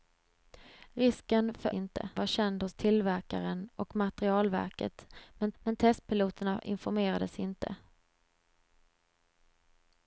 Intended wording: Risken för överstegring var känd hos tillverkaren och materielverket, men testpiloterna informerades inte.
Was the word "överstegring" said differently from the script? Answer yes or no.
yes